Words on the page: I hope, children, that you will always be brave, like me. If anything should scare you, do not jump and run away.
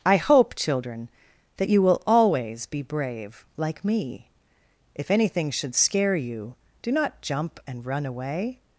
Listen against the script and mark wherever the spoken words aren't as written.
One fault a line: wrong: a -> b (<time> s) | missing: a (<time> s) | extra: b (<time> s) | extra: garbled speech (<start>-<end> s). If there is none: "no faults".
no faults